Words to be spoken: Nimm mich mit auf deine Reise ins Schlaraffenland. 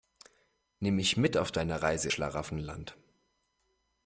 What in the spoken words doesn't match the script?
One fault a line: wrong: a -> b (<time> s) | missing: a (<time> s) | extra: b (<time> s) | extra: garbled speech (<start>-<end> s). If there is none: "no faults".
missing: ins (2.1 s)